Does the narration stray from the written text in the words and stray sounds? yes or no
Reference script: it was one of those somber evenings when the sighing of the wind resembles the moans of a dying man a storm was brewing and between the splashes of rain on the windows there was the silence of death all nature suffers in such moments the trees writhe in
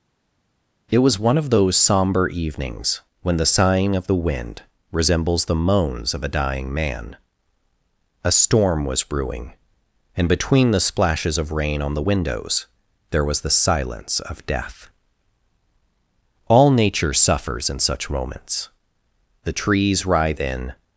no